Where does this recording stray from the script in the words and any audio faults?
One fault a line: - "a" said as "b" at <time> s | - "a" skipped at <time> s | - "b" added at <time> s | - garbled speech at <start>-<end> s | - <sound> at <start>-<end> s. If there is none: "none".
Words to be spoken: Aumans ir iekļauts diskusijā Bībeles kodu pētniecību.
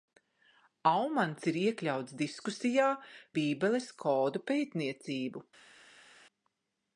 none